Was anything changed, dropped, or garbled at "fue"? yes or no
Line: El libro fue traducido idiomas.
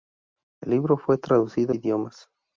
no